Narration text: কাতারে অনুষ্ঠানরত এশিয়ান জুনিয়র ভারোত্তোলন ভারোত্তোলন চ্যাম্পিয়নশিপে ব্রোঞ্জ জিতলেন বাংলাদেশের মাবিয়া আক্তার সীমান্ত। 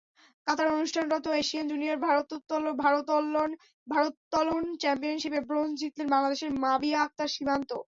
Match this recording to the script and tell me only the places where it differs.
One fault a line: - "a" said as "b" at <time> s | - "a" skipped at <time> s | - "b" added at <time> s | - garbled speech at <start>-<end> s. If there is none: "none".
- "ভারোত্তোলন" skipped at 4.6 s